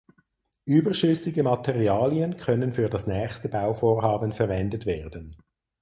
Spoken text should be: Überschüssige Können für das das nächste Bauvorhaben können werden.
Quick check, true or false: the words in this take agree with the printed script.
false